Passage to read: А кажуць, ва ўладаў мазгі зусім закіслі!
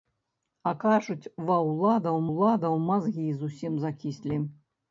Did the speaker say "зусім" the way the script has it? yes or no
yes